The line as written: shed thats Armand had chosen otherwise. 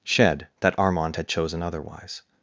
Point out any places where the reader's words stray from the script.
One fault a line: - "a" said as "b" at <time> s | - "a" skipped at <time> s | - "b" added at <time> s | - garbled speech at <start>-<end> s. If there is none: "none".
- "thats" said as "that" at 0.6 s